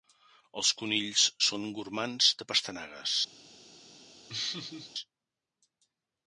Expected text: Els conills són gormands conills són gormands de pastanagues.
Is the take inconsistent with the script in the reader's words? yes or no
yes